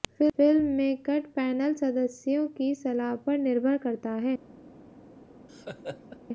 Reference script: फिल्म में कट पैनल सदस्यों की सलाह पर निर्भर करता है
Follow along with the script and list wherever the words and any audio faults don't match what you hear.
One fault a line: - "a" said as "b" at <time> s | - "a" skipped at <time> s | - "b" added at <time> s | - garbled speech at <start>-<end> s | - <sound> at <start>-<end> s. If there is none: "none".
- laugh at 5.5-6.2 s